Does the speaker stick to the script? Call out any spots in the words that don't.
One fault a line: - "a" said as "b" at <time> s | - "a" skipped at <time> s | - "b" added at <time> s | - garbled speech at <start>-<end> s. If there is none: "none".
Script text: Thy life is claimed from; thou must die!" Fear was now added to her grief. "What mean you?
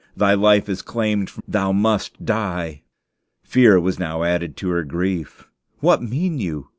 none